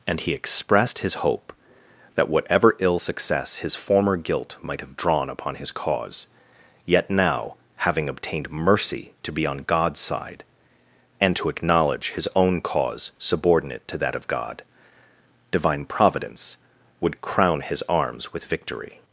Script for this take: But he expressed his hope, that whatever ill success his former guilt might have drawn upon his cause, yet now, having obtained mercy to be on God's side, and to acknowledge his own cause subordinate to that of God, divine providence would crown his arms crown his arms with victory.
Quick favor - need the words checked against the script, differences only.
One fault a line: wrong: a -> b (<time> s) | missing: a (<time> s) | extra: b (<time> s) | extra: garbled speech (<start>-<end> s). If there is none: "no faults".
wrong: But -> And (0.1 s)
missing: crown his arms (18.3 s)